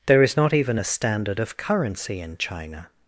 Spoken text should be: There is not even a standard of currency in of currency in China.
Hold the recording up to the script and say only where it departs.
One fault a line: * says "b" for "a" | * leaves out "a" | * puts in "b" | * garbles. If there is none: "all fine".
* leaves out "of currency in"